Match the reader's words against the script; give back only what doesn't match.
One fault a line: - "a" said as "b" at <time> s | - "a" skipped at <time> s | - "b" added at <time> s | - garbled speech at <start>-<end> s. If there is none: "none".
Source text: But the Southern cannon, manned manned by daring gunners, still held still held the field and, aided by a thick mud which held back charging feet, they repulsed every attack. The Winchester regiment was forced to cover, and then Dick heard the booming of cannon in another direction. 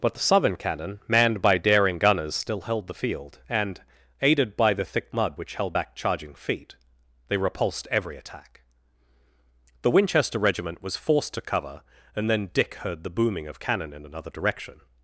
- "manned" skipped at 1.4 s
- "still held" skipped at 2.9 s
- "a" said as "the" at 4.7 s